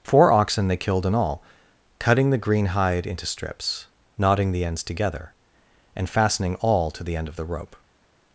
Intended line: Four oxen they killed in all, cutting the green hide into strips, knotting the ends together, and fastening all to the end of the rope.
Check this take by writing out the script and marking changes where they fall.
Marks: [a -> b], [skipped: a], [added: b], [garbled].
Four oxen they killed in all, cutting the green hide into strips, knotting the ends together, and fastening all to the end of the rope.